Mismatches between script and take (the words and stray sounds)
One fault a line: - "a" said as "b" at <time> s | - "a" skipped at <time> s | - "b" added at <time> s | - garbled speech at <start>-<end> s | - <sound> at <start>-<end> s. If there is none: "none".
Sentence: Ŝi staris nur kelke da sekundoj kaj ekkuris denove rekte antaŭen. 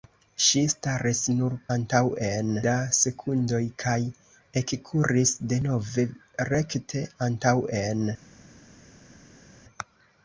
- "kelke" said as "antaŭen" at 1.8 s